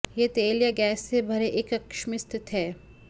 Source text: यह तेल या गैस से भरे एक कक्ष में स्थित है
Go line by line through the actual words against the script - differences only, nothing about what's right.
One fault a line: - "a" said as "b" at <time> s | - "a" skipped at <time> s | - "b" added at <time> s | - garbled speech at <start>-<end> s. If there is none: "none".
none